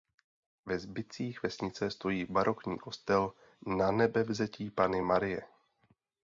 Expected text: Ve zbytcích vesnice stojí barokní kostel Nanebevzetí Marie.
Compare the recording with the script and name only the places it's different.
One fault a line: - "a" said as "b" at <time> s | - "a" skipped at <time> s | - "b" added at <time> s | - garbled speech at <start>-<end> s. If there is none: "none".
- "Panny" added at 4.7 s